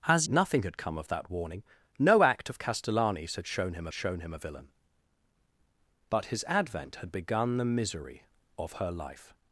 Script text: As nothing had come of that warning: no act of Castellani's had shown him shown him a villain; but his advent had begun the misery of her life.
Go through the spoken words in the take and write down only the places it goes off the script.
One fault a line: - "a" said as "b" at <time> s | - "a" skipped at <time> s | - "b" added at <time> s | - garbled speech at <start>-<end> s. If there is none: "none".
none